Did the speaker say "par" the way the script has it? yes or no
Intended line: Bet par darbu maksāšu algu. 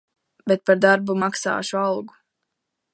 yes